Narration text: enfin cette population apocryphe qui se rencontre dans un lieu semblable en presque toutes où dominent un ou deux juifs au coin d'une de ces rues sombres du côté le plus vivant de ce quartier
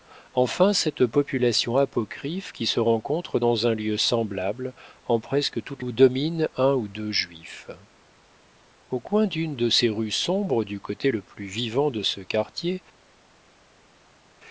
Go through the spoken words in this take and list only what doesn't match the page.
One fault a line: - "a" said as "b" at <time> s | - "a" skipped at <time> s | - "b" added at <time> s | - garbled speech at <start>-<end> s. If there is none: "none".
none